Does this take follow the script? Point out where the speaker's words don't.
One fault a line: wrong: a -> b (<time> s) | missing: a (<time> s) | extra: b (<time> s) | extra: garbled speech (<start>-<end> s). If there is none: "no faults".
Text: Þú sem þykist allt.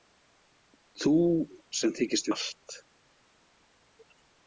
no faults